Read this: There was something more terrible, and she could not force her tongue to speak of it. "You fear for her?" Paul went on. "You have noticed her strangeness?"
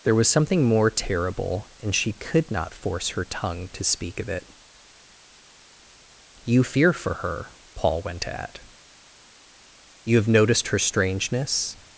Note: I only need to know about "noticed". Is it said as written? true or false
true